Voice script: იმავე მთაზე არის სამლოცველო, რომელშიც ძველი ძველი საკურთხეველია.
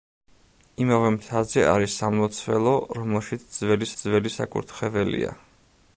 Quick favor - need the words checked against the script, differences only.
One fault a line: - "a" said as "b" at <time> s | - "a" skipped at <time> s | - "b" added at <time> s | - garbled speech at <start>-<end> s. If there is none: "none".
none